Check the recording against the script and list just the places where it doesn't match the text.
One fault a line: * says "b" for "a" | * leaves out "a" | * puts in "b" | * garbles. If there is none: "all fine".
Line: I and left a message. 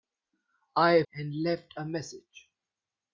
all fine